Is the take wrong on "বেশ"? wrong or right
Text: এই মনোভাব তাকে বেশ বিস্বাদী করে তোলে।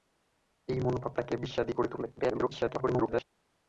wrong